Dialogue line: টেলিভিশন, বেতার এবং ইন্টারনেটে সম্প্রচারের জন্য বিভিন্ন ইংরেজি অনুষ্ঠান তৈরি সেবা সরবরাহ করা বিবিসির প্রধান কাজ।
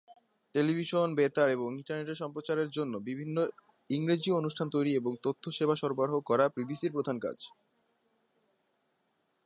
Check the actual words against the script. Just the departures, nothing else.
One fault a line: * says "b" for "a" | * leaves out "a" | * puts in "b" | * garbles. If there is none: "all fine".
* puts in "এবং তথ্য"